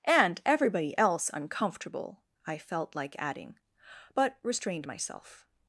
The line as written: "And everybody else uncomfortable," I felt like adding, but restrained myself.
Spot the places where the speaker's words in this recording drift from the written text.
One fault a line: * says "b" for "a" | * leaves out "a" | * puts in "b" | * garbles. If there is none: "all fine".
all fine